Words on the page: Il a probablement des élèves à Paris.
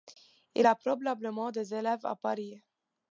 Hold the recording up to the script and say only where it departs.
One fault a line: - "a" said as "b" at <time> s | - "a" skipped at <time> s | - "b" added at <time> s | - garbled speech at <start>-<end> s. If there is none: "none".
none